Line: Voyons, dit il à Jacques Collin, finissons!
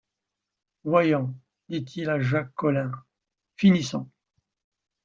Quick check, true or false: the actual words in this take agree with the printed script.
true